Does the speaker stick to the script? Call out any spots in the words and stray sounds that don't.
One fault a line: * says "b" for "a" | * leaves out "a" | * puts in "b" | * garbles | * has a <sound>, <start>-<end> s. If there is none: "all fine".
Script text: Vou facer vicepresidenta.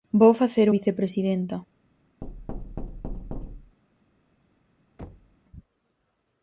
* has a thud, 2.2-3.8 s
* has a thud, 5.0-5.4 s